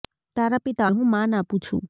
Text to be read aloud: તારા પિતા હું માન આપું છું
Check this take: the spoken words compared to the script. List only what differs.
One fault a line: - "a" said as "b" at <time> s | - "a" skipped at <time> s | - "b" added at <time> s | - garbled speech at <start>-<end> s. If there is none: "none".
none